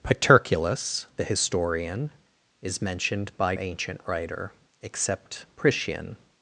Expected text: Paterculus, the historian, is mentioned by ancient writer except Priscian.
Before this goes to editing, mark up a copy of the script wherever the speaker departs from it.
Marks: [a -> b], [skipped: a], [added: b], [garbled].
Paterculus, the historian, is mentioned by ancient writer except Priscian.